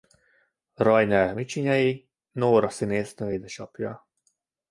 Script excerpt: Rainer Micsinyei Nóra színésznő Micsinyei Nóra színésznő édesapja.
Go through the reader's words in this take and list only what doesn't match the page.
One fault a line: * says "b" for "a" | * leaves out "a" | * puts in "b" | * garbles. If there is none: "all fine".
* leaves out "Micsinyei Nóra színésznő"